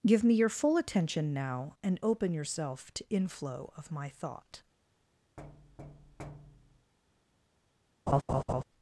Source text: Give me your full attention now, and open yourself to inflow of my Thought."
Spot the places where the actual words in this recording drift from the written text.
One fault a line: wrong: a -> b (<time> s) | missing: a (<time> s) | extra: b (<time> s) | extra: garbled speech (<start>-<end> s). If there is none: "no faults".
no faults